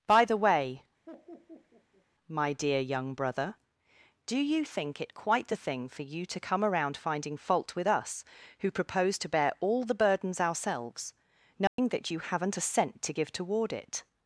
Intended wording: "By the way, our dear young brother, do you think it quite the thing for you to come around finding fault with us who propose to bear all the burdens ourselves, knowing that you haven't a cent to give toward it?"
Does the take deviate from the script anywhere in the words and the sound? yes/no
yes